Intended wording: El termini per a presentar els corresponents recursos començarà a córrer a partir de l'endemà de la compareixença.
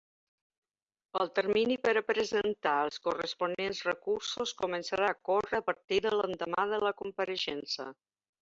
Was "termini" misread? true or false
false